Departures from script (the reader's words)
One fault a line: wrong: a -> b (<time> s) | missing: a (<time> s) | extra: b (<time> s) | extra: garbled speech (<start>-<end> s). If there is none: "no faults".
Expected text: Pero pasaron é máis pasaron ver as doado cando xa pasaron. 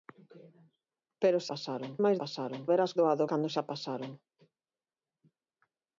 no faults